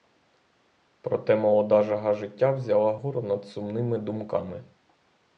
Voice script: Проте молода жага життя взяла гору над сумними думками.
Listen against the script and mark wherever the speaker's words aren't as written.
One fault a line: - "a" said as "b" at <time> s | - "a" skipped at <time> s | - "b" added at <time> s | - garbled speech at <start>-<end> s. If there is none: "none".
none